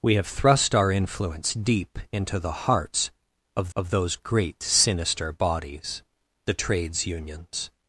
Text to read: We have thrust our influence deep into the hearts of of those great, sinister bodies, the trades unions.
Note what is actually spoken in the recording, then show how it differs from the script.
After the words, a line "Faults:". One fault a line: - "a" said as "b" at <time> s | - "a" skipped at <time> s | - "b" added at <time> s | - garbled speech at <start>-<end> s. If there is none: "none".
We have thrust our influence deep into the hearts of of those great, sinister bodies, the trades unions.
Faults:
none